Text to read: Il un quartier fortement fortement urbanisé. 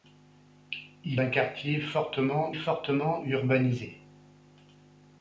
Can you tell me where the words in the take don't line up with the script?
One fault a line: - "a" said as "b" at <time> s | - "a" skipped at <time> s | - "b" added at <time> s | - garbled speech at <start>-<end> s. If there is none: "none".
none